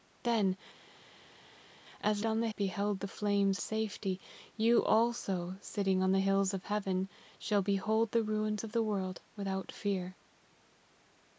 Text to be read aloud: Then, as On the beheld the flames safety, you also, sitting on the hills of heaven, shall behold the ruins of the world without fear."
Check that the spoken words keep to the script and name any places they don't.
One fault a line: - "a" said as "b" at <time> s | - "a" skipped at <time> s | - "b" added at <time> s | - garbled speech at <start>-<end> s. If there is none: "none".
none